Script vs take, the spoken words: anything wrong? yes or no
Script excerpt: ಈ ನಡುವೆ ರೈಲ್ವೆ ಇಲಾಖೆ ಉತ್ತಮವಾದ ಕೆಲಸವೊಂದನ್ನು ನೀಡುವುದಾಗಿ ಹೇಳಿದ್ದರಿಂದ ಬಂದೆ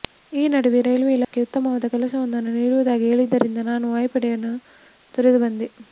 yes